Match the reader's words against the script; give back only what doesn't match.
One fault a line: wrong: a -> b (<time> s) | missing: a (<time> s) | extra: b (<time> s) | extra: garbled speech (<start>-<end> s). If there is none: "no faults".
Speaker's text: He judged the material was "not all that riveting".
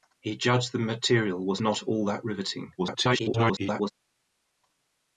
extra: garbled speech (2.8-3.9 s)